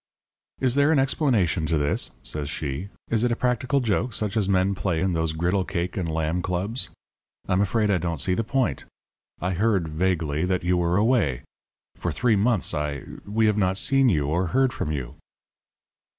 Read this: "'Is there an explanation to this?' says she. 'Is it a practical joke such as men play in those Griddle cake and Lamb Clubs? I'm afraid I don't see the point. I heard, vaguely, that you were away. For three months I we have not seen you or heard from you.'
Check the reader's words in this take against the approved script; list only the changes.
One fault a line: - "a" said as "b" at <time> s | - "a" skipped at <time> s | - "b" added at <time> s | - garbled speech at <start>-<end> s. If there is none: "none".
none